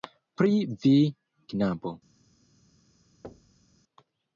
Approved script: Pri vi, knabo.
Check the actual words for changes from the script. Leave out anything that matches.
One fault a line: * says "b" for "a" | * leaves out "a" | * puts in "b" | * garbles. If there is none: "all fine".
all fine